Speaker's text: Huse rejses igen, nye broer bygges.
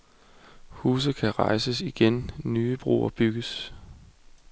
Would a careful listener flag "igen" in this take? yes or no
no